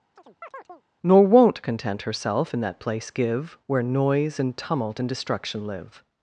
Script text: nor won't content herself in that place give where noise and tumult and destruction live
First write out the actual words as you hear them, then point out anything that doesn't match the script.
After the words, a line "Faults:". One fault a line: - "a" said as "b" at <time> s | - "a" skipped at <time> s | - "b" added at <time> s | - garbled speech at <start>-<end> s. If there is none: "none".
nor won't content herself in that place give where noise and tumult and destruction live
Faults:
none